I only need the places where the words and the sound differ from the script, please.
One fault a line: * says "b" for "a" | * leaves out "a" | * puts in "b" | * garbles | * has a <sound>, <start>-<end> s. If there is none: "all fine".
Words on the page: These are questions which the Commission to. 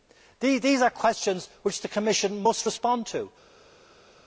* puts in "must respond"